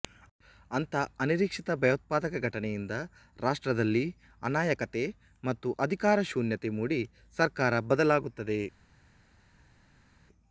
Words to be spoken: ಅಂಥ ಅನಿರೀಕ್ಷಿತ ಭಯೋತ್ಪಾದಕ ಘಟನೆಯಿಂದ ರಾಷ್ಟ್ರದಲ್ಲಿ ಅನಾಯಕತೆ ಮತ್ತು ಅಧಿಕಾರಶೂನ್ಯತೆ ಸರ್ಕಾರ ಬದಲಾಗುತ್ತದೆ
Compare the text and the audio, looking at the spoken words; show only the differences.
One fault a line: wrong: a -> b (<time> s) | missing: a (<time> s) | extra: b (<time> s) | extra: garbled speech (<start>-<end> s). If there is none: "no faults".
extra: ಮೂಡಿ (6.8 s)